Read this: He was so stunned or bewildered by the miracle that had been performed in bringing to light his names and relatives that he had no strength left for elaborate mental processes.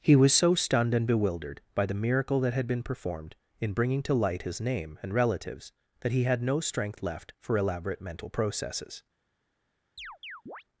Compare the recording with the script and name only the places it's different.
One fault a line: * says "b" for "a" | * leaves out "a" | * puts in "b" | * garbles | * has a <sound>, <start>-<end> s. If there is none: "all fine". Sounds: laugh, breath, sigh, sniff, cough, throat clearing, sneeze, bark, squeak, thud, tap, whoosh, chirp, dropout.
* says "and" for "or"
* says "name" for "names"
* has a chirp, 10.0-10.6 s